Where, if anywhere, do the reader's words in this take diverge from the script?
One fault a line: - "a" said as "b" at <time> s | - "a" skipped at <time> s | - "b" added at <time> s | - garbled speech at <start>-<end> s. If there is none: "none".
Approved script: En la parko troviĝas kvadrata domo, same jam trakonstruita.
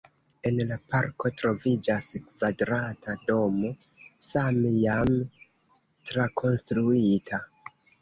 none